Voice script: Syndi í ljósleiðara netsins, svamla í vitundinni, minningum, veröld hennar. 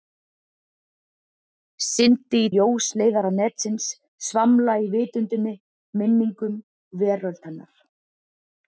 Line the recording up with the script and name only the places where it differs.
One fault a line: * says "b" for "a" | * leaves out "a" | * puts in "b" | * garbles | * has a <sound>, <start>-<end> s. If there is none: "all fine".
all fine